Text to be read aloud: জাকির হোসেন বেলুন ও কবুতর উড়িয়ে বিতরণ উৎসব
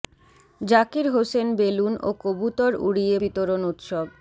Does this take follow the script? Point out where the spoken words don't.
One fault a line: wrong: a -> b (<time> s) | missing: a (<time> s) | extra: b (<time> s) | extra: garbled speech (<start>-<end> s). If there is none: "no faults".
no faults